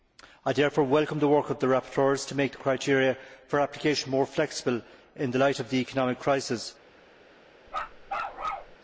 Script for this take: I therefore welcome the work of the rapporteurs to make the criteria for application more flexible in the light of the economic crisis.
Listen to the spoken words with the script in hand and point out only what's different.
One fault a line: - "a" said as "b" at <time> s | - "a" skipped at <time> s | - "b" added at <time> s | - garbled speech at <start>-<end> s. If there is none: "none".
none